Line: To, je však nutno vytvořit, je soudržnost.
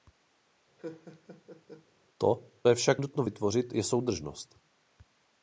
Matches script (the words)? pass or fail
pass